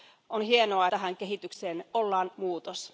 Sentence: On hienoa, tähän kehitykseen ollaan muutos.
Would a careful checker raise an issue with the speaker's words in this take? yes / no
no